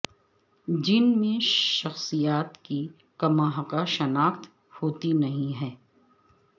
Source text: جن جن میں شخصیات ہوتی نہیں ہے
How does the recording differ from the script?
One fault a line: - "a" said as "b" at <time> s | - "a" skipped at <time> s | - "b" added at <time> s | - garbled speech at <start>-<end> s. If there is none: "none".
- "جن" skipped at 1.1 s
- "کی کماحقہ شناخت" added at 2.6 s